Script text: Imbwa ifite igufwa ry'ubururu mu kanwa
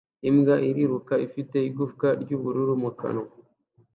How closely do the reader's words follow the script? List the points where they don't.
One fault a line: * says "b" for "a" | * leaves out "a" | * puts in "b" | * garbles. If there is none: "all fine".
* puts in "iriruka"